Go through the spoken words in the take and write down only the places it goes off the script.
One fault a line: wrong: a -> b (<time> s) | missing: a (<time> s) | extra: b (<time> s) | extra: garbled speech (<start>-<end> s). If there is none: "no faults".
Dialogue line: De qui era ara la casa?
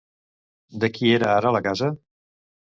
no faults